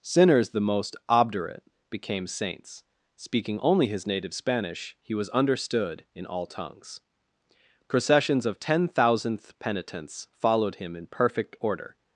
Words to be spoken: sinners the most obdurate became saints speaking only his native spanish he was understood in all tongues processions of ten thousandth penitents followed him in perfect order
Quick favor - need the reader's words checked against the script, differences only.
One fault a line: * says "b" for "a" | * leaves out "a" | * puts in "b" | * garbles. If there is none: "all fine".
all fine